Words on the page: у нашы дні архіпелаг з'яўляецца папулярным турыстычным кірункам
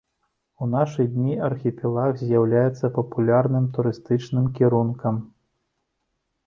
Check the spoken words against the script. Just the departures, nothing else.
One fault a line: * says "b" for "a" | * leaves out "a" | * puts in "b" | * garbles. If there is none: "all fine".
all fine